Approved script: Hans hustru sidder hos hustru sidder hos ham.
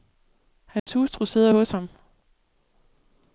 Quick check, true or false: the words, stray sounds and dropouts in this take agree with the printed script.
false